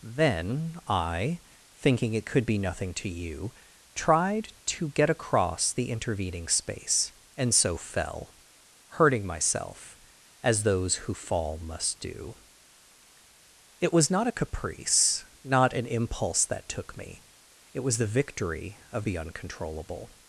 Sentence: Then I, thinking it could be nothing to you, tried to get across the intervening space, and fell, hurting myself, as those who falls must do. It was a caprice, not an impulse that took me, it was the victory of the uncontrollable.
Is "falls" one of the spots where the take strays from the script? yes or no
yes